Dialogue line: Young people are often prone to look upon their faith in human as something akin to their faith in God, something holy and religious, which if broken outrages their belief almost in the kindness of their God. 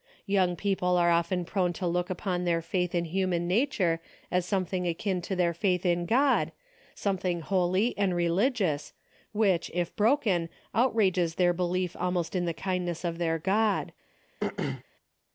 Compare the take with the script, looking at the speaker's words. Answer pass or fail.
fail